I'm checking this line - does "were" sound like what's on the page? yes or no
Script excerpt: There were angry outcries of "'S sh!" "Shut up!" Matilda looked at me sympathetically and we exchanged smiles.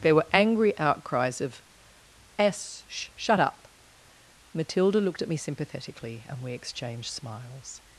yes